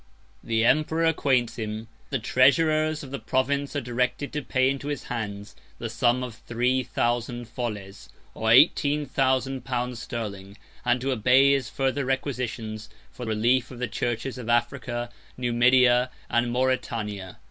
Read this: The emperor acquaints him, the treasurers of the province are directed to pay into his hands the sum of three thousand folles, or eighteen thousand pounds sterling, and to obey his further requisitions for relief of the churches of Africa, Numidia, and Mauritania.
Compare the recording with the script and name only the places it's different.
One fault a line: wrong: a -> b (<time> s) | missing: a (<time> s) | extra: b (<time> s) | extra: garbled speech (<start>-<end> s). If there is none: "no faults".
no faults